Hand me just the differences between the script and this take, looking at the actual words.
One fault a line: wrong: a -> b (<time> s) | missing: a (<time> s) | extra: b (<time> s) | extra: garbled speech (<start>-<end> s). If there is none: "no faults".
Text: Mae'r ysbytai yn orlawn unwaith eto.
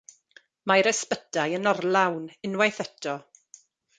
no faults